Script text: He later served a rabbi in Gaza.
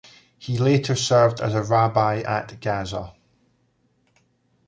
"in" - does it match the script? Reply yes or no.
no